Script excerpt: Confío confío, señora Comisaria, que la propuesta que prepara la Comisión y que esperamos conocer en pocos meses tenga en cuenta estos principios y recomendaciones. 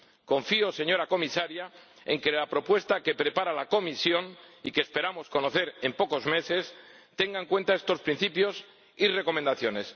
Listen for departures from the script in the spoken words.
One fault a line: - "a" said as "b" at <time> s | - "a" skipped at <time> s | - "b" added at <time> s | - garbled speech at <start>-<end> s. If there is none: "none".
- "confío" skipped at 0.7 s
- "en" added at 2.1 s